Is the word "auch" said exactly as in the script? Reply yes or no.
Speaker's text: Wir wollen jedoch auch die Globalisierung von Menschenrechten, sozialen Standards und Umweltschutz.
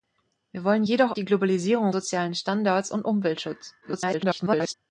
no